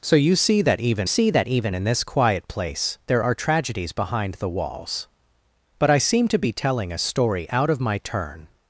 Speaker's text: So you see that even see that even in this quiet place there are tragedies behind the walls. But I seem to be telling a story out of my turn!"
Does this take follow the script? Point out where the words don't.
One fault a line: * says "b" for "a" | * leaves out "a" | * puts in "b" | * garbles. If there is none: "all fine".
all fine